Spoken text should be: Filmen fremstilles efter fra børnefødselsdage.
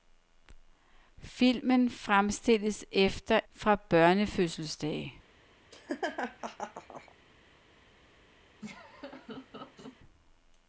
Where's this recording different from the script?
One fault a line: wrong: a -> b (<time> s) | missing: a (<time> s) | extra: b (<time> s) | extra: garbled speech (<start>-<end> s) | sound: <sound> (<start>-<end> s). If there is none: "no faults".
sound: laugh (5.7-7.2 s)
sound: laugh (8.6-10.0 s)